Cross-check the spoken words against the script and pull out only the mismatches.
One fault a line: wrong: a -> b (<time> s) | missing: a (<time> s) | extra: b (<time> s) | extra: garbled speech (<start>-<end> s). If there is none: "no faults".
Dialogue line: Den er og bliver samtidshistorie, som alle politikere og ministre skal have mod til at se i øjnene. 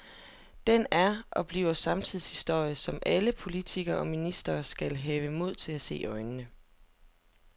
no faults